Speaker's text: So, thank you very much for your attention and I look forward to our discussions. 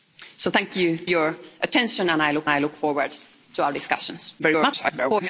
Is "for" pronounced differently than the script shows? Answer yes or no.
yes